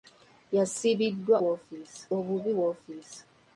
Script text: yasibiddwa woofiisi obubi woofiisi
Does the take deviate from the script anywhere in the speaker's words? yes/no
no